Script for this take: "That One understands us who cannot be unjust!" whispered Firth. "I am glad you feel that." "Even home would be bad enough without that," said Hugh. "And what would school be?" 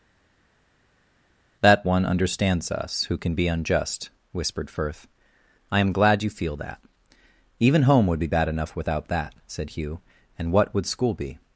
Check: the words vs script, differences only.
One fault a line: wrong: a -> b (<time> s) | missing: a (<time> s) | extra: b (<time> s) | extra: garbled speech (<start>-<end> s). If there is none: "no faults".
wrong: cannot -> can (3.2 s)